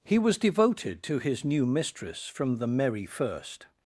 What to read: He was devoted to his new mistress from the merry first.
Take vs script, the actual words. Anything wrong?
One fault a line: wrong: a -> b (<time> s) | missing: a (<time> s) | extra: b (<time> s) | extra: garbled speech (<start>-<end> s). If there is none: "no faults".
no faults